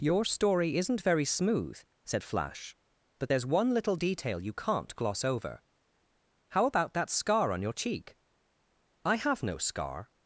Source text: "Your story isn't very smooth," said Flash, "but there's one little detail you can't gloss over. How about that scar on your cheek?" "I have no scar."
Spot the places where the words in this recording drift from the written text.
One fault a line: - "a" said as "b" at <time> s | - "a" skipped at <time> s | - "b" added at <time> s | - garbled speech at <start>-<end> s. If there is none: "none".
none